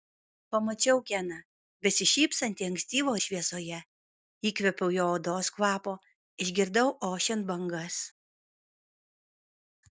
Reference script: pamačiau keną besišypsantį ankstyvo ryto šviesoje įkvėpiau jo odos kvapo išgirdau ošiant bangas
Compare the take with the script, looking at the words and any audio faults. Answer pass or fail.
fail